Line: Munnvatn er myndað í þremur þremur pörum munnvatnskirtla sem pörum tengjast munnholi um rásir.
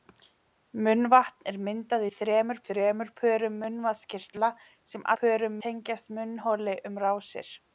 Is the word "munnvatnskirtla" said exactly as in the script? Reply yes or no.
yes